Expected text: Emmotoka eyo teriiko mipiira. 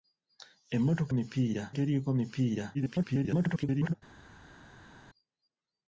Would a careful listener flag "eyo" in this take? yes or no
yes